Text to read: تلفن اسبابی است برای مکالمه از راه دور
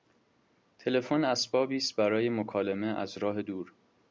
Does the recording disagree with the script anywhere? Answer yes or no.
no